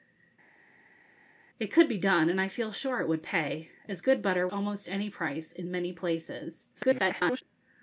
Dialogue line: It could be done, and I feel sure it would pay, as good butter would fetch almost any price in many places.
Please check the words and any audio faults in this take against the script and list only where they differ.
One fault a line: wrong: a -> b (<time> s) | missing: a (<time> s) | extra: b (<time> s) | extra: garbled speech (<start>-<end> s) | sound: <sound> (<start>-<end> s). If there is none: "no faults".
missing: would fetch (4.5 s)
extra: garbled speech (6.7-7.4 s)